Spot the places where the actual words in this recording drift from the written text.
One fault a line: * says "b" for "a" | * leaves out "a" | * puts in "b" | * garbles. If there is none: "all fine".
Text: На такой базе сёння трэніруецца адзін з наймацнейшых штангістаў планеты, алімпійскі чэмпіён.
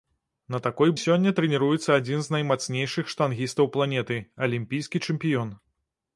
* leaves out "базе"